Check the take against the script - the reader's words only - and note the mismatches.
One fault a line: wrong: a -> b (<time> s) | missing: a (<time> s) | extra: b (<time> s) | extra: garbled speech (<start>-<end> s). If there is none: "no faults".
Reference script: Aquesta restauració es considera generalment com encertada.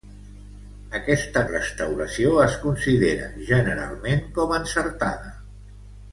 no faults